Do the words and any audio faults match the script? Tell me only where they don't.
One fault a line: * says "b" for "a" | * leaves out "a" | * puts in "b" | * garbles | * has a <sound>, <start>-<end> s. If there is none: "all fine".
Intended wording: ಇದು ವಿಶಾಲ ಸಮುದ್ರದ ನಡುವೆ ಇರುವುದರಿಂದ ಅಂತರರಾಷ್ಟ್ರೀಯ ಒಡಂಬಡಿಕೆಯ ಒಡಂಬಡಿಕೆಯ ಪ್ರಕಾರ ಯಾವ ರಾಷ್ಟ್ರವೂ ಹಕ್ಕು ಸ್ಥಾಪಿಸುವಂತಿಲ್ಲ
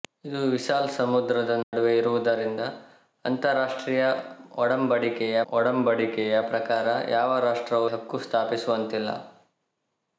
* has a dropout, 1.6-1.7 s